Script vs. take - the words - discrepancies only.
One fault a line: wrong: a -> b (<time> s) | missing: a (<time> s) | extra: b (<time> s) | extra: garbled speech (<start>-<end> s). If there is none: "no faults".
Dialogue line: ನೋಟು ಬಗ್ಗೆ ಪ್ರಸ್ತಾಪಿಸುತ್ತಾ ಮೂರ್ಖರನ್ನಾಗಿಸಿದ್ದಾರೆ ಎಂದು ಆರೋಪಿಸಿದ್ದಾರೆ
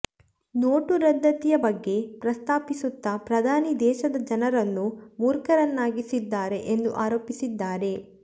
extra: ರದ್ದತಿಯ (1.0 s)
extra: ಪ್ರಧಾನಿ ದೇಶದ ಜನರನ್ನು (3.2 s)